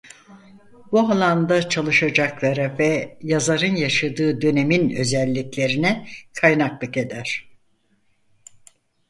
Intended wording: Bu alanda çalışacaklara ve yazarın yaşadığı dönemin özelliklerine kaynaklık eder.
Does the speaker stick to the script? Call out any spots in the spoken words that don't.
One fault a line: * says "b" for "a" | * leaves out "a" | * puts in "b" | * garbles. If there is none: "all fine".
all fine